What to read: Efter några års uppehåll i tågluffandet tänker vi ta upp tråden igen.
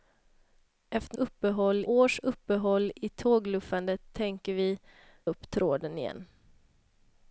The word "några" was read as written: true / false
false